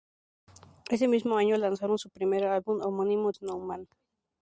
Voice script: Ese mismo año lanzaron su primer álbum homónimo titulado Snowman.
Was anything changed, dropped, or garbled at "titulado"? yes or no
yes